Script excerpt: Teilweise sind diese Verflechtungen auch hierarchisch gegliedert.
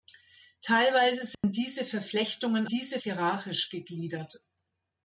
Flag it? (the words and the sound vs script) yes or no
yes